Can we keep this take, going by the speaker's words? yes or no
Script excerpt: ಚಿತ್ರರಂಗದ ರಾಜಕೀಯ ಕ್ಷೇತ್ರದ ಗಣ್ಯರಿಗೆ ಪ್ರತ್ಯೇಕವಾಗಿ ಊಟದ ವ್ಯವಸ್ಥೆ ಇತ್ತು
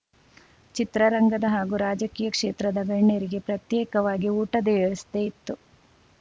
no